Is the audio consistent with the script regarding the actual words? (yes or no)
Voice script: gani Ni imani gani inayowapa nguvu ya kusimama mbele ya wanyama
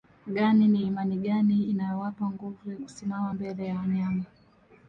yes